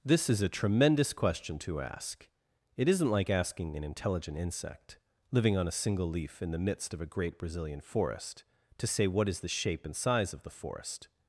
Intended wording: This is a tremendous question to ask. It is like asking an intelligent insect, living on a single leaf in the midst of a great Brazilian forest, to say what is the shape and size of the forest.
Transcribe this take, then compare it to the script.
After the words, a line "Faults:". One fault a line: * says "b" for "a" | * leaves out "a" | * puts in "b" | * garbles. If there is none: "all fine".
This is a tremendous question to ask. It isn't like asking an intelligent insect, living on a single leaf in the midst of a great Brazilian forest, to say what is the shape and size of the forest.
Faults:
* says "isn't" for "is"